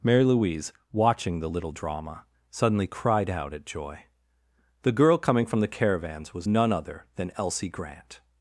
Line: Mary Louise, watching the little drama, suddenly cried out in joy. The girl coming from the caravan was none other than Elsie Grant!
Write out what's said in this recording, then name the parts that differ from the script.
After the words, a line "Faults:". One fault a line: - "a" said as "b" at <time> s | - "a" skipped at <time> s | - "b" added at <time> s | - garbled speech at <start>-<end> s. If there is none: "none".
Mary Louise, watching the little drama, suddenly cried out at joy. The girl coming from the caravans was none other than Elsie Grant!
Faults:
- "in" said as "at" at 3.5 s
- "caravan" said as "caravans" at 5.7 s